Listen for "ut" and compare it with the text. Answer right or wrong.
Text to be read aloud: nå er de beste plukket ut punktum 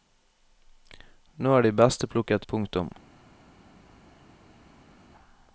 wrong